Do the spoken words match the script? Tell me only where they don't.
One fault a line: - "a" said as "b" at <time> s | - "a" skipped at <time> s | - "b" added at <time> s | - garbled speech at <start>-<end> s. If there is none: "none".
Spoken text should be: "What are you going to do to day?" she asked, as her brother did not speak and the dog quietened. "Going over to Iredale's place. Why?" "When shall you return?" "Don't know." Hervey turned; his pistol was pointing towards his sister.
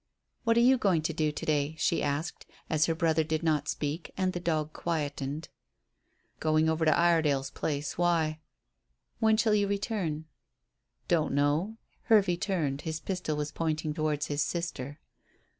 none